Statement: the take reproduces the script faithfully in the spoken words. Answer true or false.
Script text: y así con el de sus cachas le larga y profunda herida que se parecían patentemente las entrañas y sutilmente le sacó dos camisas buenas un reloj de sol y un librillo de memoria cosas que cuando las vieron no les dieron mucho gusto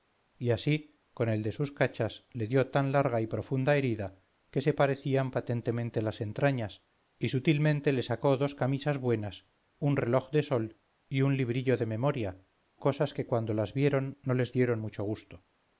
false